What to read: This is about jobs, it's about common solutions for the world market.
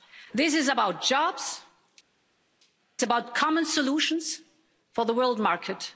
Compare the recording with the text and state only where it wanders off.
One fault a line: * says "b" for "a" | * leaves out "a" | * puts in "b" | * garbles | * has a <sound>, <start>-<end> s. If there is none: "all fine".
* leaves out "it's"